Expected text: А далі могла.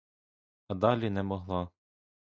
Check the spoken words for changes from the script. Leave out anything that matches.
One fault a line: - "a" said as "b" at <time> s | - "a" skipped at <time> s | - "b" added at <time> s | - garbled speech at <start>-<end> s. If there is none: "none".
- "не" added at 1.1 s